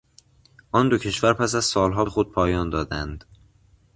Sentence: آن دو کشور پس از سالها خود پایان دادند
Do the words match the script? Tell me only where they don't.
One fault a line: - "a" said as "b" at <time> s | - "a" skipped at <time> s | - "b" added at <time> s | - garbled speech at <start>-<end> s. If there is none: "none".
none